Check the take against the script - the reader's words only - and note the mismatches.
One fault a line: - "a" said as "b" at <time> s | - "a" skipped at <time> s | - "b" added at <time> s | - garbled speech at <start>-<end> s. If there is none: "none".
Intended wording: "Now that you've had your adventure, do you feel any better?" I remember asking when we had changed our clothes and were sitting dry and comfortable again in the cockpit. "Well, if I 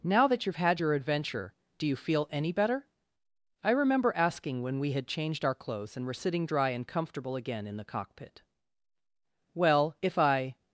none